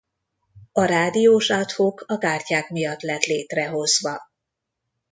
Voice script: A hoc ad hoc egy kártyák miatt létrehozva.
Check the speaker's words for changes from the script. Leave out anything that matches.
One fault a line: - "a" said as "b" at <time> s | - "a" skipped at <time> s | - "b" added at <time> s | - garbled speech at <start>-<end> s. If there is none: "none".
- "hoc" said as "rádiós" at 0.8 s
- "egy" said as "a" at 2.0 s
- "lett" added at 3.0 s